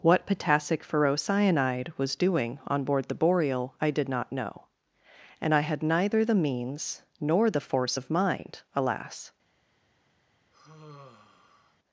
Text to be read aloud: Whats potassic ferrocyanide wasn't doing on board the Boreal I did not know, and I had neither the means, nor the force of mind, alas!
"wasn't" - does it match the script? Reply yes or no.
no